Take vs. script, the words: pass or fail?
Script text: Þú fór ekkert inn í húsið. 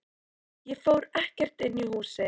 fail